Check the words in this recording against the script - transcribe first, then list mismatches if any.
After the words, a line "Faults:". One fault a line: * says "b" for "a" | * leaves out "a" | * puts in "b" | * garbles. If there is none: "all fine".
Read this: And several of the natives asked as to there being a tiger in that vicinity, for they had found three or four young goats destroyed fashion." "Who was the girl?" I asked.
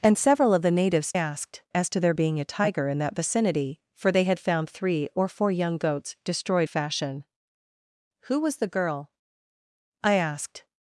And several of the natives asked as to there being a tiger in that vicinity, for they had found three or four young goats destroyed fashion." "Who was the girl?" I asked.
Faults:
all fine